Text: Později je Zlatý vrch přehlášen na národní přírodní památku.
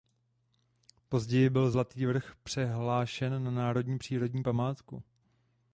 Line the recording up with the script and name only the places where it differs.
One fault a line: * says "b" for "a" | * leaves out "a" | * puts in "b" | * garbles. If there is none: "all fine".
* says "byl" for "je"